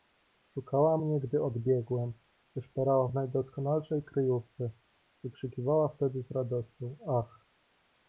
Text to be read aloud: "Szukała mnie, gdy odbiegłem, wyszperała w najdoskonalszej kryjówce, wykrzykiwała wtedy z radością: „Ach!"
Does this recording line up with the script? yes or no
yes